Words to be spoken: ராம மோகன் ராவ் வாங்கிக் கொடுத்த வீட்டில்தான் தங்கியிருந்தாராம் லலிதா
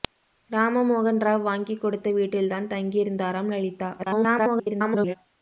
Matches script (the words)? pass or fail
fail